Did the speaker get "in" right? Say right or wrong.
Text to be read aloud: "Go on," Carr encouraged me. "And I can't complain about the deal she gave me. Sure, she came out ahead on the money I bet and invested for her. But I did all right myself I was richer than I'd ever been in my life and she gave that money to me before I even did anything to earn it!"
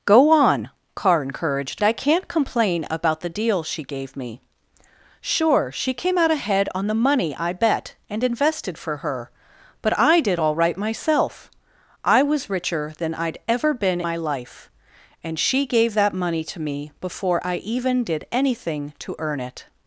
wrong